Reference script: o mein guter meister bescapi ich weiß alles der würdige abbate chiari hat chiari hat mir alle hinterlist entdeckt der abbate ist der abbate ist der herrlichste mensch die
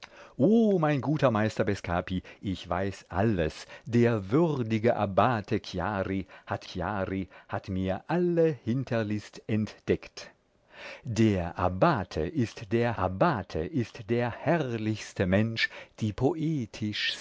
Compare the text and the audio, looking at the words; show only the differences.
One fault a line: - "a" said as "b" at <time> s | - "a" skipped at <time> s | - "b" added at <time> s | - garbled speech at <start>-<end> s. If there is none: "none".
none